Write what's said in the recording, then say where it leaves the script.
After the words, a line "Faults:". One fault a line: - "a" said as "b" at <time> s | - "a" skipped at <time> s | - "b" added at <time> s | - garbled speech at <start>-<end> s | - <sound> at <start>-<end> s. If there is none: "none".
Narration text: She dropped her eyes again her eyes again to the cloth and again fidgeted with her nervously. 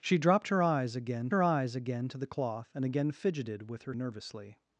She dropped her eyes again her eyes again to the cloth and again fidgeted with her nervously.
Faults:
none